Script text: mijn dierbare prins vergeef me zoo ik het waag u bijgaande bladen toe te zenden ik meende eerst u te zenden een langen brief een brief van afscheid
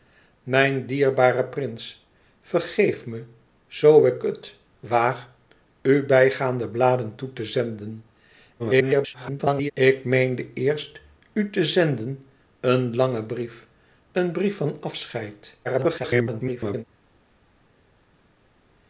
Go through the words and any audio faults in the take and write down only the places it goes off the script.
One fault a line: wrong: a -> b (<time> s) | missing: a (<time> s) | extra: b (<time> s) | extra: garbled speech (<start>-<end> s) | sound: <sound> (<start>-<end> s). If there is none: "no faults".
extra: garbled speech (8.6-9.7 s)
extra: garbled speech (15.6-16.8 s)